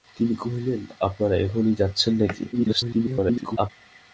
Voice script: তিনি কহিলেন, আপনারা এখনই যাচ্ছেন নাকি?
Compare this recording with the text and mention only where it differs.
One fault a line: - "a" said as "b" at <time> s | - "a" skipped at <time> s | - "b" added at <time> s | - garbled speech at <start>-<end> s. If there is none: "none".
- garbled speech at 2.5-3.7 s